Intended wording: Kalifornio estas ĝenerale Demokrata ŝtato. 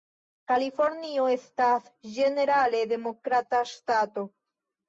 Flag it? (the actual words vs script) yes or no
no